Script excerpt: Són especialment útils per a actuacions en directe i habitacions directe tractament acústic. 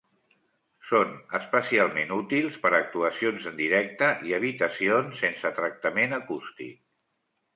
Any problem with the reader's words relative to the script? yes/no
yes